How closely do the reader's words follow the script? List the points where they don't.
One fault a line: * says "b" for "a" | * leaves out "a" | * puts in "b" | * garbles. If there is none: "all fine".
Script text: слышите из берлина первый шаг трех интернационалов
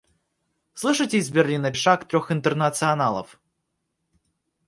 * leaves out "первый"